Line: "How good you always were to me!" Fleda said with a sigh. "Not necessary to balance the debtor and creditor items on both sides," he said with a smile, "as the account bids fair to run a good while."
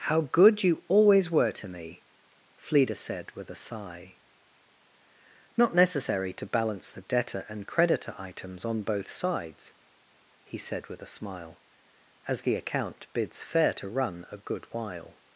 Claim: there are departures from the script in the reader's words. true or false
false